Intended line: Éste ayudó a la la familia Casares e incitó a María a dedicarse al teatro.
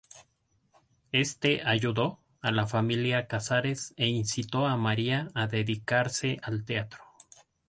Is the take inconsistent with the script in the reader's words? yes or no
yes